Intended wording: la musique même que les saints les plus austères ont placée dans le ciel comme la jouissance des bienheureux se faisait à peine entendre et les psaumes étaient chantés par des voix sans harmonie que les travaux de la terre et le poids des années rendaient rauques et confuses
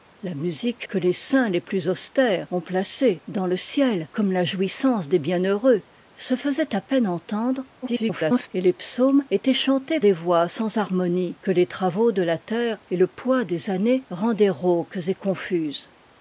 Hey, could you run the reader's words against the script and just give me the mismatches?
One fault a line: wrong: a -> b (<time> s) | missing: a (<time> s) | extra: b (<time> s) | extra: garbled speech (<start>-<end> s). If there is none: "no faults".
missing: même (0.9 s)
extra: garbled speech (7.8-8.5 s)
missing: par (10.0 s)